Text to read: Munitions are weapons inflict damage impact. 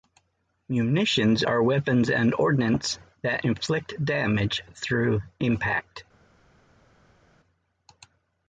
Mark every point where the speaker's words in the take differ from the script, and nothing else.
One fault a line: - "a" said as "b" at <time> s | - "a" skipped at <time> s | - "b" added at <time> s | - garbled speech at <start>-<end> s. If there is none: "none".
- "and ordnance that" added at 2.1 s
- "through" added at 4.7 s